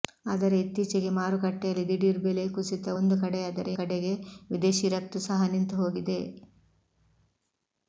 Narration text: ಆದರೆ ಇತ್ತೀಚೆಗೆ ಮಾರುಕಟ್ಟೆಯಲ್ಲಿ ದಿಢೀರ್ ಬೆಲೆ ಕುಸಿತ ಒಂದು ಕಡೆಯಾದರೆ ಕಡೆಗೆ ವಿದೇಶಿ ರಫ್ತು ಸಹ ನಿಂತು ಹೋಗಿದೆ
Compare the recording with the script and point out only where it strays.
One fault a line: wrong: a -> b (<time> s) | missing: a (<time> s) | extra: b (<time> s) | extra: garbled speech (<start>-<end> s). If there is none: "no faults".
no faults